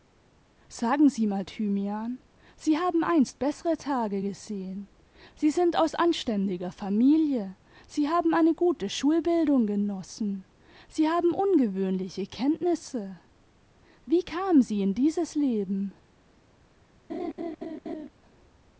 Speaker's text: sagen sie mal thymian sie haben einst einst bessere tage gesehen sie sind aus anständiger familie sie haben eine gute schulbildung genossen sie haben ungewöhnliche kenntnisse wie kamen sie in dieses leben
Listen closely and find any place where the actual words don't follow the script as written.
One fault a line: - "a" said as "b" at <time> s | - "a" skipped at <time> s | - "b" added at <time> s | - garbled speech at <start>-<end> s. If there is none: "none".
- "einst" skipped at 3.4 s